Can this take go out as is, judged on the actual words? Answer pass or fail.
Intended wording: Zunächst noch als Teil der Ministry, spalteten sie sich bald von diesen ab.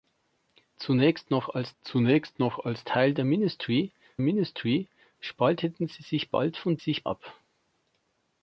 fail